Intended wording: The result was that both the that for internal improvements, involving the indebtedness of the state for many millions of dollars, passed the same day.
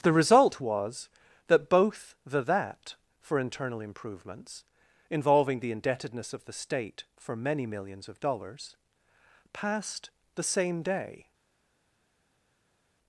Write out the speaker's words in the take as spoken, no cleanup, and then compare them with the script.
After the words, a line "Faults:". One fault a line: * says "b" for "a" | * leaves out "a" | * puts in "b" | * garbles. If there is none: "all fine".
The result was that both the that for internal improvements, involving the indebtedness of the state for many millions of dollars, passed the same day.
Faults:
all fine